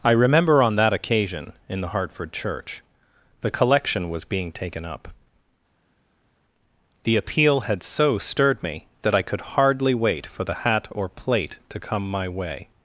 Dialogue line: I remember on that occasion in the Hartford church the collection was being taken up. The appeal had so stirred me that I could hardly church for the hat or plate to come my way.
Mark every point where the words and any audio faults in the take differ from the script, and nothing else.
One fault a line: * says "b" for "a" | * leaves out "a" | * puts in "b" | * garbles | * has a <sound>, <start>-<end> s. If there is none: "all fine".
* says "wait" for "church"